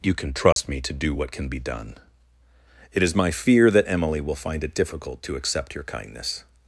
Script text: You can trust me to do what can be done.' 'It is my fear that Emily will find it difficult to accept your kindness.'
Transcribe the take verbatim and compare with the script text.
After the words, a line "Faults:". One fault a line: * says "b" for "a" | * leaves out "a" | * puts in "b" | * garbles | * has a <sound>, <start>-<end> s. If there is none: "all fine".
You can trust me to do what can be done.' 'It is my fear that Emily will find it difficult to accept your kindness.'
Faults:
* has a dropout, 0.5-0.6 s